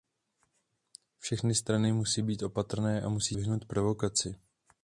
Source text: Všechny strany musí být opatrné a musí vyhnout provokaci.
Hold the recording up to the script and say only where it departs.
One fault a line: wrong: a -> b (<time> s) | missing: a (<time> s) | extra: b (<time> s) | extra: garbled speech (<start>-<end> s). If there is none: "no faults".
no faults